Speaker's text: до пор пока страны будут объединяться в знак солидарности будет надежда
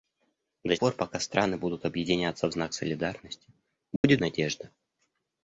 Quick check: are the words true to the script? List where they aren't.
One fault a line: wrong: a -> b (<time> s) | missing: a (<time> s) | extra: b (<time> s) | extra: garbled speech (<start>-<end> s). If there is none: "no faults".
no faults